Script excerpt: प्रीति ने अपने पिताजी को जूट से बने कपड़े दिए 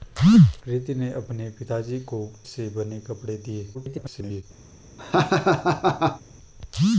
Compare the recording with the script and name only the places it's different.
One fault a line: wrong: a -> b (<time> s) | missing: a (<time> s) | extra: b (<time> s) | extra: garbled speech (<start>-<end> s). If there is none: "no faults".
missing: जूट (2.2 s)
extra: garbled speech (3.7-4.4 s)